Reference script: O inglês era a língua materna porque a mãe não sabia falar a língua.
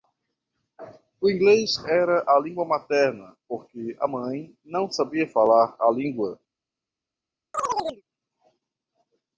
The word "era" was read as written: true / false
true